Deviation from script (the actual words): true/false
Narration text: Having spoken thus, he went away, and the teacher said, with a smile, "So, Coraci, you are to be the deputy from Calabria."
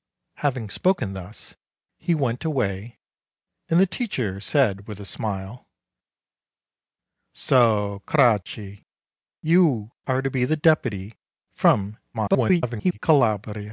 true